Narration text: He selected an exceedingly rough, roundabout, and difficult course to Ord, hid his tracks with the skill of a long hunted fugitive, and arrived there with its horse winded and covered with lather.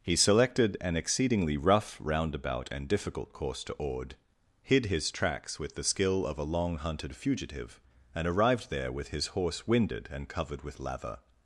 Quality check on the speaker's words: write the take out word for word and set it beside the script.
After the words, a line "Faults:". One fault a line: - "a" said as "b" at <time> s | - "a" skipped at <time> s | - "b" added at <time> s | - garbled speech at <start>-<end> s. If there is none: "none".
He selected an exceedingly rough, roundabout, and difficult course to Ord, hid his tracks with the skill of a long hunted fugitive, and arrived there with his horse winded and covered with lather.
Faults:
- "its" said as "his" at 9.1 s